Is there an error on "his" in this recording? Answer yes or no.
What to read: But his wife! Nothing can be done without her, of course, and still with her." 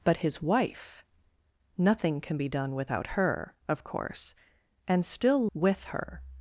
no